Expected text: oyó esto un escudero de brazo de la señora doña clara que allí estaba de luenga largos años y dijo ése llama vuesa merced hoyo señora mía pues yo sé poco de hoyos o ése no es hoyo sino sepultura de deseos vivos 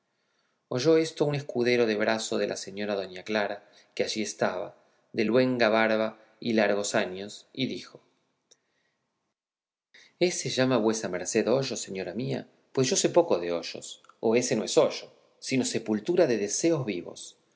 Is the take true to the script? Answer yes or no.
no